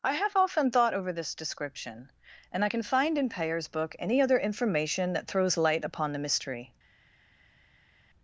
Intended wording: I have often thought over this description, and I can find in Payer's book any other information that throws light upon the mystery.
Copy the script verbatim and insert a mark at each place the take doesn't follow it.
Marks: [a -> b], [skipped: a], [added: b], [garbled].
I have often thought over this description, and I can find in Payer's book any other information that throws light upon the mystery.